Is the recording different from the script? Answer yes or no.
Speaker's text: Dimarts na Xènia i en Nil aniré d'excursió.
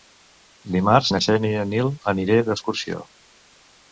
no